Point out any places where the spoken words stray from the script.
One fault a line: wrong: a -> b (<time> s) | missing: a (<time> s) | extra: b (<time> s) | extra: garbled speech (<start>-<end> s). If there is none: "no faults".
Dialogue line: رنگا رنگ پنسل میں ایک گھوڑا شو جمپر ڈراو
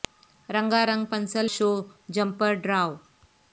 missing: میں ایک گھوڑا (1.5 s)